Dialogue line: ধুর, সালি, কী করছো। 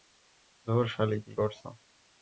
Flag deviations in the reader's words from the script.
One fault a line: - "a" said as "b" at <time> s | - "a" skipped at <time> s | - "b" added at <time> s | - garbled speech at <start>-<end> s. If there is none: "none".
none